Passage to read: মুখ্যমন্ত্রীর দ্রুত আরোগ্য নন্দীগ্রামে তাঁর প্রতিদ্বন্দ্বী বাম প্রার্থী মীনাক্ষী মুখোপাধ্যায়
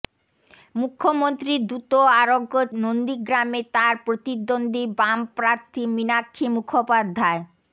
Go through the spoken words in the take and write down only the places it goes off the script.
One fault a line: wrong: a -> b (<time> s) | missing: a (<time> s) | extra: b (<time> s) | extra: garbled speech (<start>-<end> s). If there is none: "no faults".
no faults